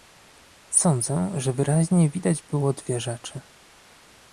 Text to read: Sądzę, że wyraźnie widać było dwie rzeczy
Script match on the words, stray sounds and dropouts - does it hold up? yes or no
yes